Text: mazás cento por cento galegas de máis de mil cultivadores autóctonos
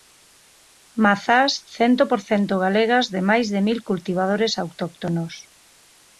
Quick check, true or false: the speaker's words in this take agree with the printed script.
true